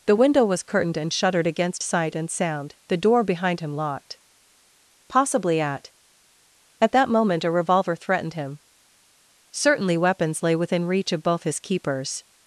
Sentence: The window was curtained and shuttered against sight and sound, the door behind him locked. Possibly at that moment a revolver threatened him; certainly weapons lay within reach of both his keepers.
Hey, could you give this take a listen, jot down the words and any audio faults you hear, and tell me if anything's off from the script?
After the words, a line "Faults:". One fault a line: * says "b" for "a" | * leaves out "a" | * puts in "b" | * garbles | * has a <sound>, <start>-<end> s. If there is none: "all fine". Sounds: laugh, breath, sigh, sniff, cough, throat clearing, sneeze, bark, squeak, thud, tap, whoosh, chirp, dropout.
The window was curtained and shuttered against sight and sound, the door behind him locked. Possibly at at that moment a revolver threatened him; certainly weapons lay within reach of both his keepers.
Faults:
* puts in "at"